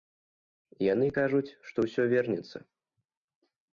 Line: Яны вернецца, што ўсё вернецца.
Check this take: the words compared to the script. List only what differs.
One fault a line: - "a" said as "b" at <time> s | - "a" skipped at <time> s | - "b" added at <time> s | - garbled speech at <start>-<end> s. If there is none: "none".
- "вернецца" said as "кажуць" at 1.2 s